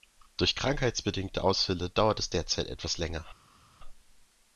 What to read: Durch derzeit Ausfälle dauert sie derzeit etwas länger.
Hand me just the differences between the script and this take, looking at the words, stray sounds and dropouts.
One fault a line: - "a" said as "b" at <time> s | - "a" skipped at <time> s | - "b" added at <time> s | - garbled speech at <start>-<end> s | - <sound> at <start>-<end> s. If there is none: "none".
- "derzeit" said as "krankheitsbedingte" at 0.6 s
- "sie" said as "es" at 2.2 s